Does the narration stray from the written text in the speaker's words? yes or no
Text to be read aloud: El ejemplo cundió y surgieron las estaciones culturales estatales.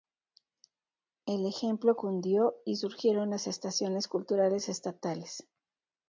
no